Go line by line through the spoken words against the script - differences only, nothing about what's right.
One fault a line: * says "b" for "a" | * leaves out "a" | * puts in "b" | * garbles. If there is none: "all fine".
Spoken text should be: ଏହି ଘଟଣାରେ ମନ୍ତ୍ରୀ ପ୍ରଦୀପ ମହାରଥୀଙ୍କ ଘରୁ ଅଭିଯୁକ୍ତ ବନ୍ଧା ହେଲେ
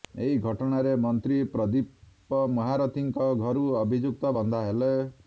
all fine